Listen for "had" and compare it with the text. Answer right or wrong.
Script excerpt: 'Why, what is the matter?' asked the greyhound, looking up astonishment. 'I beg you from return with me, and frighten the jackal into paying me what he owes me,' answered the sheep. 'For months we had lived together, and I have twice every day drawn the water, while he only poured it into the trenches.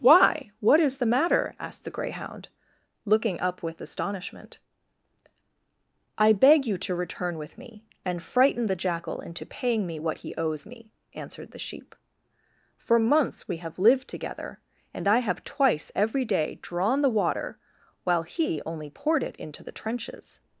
wrong